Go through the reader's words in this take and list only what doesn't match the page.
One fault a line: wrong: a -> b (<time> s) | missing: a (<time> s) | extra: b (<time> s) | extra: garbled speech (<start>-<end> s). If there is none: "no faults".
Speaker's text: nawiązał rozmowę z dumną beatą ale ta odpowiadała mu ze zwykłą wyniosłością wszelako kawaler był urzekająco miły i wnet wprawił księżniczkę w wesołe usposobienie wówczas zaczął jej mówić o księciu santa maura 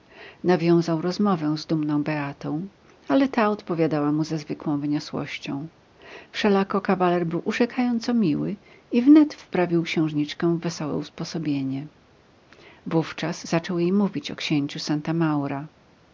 no faults